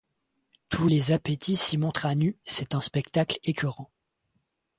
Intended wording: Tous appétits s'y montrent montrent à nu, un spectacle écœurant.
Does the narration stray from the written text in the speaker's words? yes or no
yes